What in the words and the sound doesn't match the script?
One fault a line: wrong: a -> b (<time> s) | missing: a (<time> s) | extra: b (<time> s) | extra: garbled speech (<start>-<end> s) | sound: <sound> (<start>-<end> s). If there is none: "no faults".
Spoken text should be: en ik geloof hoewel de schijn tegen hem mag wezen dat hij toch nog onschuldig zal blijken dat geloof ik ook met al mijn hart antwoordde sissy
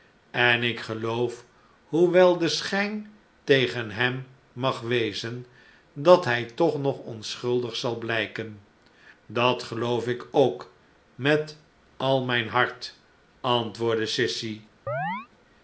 sound: chirp (14.9-15.3 s)